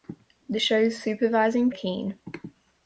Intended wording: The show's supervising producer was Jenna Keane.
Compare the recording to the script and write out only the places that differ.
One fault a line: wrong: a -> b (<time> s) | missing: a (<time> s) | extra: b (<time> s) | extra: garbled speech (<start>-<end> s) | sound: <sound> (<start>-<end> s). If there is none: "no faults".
missing: producer was Jenna (1.7 s)